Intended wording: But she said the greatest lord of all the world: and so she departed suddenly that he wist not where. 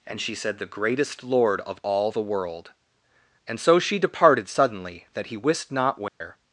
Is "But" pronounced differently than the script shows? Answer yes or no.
yes